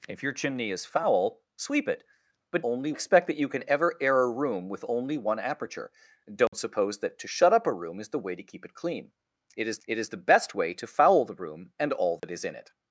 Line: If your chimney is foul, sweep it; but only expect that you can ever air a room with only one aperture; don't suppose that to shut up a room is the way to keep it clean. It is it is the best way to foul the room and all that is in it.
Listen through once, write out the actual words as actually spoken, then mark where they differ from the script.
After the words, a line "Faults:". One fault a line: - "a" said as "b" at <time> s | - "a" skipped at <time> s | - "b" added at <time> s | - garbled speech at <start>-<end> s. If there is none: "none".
If your chimney is foul, sweep it; but only expect that you can ever air a room with only one aperture; don't suppose that to shut up a room is the way to keep it clean. It is it is the best way to foul the room and all that is in it.
Faults:
none